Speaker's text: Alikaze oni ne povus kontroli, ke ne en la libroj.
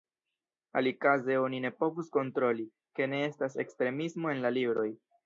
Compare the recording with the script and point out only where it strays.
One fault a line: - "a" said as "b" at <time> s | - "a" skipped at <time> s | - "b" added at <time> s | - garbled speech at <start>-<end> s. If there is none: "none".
- "estas ekstremismo" added at 3.3 s